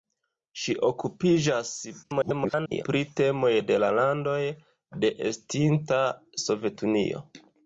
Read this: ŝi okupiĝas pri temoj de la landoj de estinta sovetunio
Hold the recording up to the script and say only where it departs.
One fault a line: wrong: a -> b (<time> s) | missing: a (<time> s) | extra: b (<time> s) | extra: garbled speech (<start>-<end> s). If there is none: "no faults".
extra: garbled speech (2.0-2.8 s)